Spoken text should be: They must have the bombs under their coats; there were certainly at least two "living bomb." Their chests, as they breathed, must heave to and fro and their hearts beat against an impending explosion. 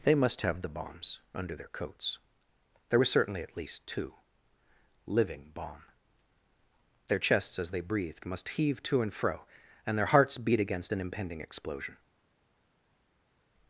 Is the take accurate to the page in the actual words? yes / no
yes